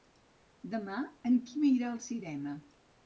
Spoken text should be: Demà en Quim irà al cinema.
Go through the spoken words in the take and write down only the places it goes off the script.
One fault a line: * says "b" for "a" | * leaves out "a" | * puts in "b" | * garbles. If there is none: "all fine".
all fine